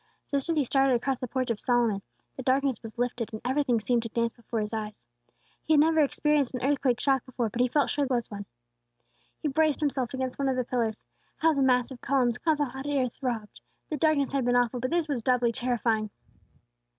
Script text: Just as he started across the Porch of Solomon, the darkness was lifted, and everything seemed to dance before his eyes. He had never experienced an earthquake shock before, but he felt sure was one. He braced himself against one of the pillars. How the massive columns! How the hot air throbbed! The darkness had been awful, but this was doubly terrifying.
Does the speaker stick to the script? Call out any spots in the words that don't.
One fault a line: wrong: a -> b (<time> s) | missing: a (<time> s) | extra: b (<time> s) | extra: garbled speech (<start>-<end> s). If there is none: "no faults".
no faults